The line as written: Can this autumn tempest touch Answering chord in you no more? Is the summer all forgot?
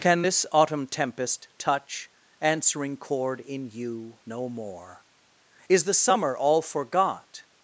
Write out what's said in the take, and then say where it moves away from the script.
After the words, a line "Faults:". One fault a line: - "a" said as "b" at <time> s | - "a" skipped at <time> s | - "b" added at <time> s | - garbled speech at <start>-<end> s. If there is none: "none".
Can this autumn tempest touch Answering chord in you no more? Is the summer all forgot?
Faults:
none